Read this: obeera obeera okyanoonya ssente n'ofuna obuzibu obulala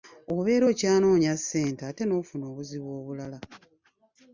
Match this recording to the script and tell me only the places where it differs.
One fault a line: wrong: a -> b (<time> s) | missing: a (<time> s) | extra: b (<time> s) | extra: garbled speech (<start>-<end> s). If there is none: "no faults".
missing: obeera (0.7 s)
extra: ate (1.9 s)